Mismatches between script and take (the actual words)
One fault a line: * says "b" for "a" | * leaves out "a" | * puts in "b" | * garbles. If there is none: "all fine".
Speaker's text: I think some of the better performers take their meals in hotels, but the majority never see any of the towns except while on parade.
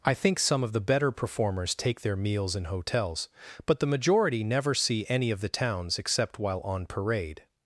all fine